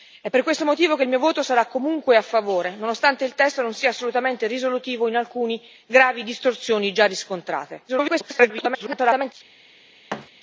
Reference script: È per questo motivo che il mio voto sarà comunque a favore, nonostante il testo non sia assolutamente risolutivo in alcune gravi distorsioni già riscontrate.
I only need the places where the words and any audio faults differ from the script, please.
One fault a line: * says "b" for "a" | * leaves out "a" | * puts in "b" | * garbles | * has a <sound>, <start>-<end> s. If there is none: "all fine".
* garbles
* has a thud, 10.1-10.3 s